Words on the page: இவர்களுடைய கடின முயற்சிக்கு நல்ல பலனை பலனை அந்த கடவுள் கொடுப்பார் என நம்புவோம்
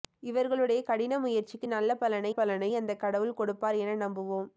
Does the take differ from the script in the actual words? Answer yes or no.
no